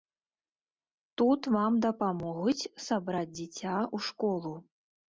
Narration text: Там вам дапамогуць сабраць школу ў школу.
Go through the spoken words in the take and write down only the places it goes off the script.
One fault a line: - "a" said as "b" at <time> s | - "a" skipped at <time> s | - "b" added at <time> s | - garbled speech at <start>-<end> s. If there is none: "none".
- "Там" said as "Тут" at 1.2 s
- "школу" said as "дзіця" at 3.4 s